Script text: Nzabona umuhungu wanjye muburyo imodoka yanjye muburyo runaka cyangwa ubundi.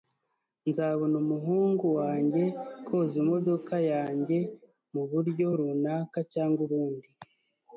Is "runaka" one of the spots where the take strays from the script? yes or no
no